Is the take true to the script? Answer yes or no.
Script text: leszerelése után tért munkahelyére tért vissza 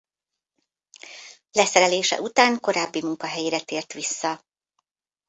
no